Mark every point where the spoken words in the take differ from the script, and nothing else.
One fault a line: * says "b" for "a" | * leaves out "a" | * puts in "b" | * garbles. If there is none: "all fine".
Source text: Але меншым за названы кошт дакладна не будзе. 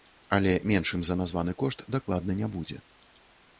all fine